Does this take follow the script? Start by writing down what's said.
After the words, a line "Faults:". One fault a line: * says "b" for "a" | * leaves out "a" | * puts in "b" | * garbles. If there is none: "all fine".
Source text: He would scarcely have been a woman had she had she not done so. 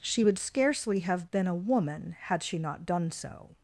She would scarcely have been a woman had she not done so.
Faults:
* says "She" for "He"
* leaves out "had she"